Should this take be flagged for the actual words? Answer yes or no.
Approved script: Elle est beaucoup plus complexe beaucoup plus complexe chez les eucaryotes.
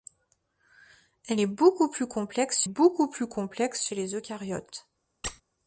no